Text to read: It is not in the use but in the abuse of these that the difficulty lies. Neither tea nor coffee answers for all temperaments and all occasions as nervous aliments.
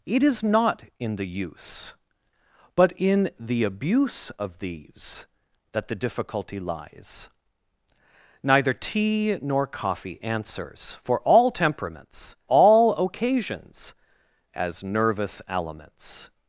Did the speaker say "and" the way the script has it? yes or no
no